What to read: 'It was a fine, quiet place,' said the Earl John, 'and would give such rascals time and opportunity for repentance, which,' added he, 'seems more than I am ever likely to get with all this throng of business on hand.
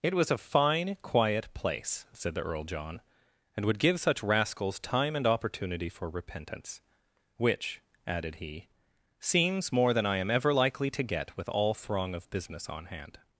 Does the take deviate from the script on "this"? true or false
true